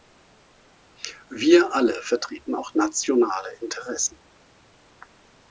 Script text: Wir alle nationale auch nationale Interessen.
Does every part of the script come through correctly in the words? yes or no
no